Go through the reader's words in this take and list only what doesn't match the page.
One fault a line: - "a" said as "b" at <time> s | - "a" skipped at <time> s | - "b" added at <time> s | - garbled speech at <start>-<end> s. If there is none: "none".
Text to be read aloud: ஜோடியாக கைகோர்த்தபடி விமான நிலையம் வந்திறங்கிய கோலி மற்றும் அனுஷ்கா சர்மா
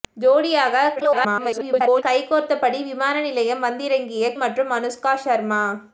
- garbled speech at 1.0-2.0 s
- "கோலி" skipped at 4.3 s